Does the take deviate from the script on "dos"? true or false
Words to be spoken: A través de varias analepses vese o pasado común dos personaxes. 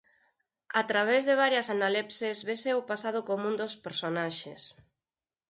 false